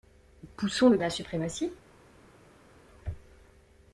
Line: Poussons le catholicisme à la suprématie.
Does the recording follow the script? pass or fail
fail